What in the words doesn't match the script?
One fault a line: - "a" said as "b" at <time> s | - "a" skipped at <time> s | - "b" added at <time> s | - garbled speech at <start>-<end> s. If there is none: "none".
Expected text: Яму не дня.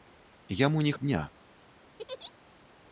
none